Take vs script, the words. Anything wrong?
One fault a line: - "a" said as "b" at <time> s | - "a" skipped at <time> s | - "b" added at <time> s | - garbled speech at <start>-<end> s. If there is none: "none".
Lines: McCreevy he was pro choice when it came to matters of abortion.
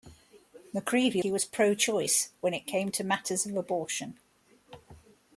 none